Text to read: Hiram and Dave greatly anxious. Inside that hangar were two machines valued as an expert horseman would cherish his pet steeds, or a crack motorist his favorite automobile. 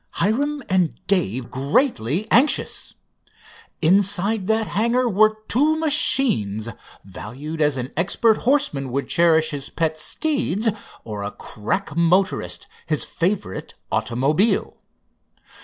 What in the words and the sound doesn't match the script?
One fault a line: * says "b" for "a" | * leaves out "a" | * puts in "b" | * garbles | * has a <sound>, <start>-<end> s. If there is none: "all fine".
all fine